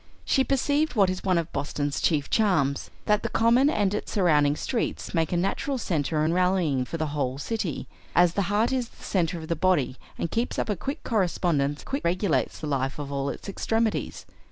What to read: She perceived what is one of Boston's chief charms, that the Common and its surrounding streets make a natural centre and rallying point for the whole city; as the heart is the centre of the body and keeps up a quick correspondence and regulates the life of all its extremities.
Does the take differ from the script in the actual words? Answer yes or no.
yes